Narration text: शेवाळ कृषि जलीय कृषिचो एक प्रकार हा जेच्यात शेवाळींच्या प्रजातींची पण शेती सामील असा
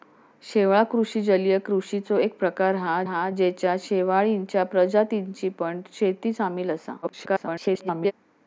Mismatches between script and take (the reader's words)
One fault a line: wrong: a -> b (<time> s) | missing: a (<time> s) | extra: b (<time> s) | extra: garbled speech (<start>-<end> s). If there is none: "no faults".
extra: हा (3.0 s)
extra: garbled speech (7.0-8.1 s)